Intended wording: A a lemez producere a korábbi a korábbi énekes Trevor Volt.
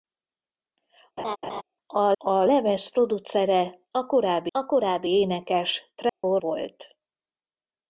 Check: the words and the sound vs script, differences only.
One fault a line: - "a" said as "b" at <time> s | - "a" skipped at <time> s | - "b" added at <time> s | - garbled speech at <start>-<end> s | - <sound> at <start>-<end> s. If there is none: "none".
- laugh at 1.2-1.6 s
- dropout at 6.1-6.2 s